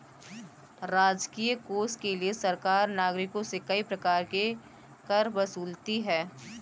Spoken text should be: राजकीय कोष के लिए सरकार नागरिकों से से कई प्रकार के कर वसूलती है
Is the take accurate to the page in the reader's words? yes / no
no